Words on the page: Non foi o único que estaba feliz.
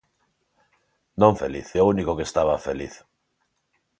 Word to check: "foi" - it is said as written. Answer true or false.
false